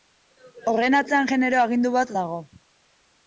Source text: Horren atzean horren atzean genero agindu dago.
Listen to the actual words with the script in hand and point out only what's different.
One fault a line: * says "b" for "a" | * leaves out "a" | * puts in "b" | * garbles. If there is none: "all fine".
* leaves out "horren atzean"
* puts in "bat"